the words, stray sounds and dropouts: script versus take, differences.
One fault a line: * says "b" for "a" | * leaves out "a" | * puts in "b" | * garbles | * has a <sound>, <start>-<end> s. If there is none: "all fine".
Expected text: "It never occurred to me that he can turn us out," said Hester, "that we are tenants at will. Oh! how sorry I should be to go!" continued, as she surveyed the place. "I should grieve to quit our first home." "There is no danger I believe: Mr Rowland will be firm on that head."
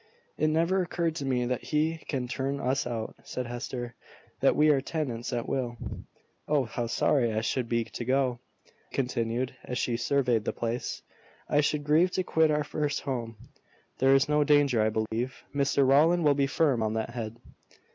* has a dropout, 15.1-15.1 s